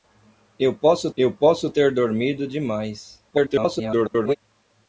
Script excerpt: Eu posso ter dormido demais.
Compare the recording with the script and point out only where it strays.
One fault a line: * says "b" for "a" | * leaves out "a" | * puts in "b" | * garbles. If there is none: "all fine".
* puts in "eu posso"
* garbles